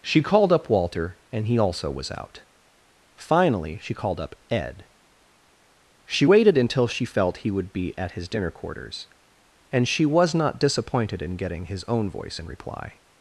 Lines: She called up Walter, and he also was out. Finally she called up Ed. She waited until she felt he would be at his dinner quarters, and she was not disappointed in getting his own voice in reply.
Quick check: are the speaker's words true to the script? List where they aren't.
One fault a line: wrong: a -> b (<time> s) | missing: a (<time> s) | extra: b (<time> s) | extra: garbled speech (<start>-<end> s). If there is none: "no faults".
no faults